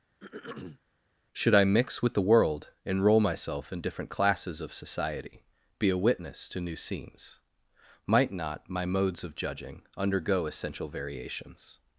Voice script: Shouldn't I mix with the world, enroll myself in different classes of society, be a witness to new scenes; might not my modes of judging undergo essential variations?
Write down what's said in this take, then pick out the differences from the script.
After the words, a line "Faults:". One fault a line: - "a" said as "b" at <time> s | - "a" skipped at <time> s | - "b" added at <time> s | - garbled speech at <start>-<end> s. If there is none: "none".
Should I mix with the world, enroll myself in different classes of society, be a witness to new scenes; might not my modes of judging undergo essential variations?
Faults:
- "Shouldn't" said as "Should" at 1.3 s